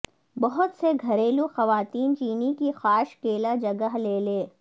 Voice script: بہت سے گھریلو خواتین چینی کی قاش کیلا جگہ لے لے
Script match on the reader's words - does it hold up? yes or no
yes